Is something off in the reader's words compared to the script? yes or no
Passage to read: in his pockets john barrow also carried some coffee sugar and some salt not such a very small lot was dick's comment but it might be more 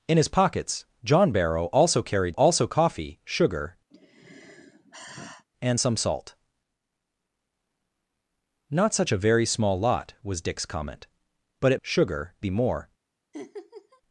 yes